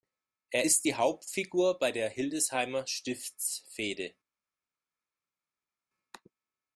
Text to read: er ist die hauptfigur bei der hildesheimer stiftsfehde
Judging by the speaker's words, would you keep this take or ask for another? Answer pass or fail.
pass